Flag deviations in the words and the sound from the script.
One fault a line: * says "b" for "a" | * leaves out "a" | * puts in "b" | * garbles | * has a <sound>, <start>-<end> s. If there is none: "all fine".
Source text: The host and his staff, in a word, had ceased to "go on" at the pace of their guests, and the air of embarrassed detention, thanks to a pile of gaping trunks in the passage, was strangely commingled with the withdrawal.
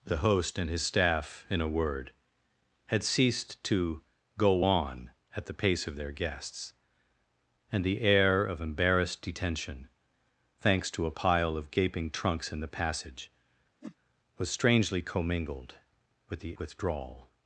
* has a whoosh, 13.8-14.0 s